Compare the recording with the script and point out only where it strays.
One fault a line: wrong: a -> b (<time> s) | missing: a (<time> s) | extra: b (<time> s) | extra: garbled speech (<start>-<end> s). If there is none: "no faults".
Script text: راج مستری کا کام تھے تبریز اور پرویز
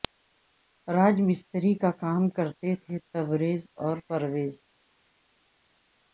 extra: کرتے (2.4 s)